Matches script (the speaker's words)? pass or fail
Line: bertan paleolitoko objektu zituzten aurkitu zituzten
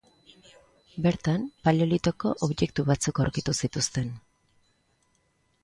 fail